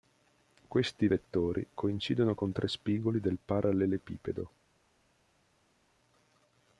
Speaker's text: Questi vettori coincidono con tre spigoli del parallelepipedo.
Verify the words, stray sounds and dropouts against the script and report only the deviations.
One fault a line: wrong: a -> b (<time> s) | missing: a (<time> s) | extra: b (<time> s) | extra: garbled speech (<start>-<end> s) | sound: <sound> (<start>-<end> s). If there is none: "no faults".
no faults